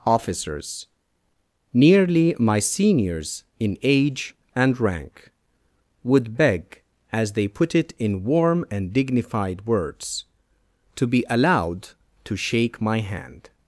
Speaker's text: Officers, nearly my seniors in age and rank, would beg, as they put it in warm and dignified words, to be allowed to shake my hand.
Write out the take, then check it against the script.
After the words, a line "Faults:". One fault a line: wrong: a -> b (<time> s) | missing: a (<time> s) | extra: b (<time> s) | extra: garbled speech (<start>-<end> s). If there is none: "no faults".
Officers, nearly my seniors in age and rank, would beg, as they put it in warm and dignified words, to be allowed to shake my hand.
Faults:
no faults